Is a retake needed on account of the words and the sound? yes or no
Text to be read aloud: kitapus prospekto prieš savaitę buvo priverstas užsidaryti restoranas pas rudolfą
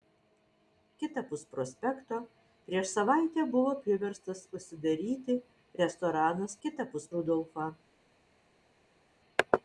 yes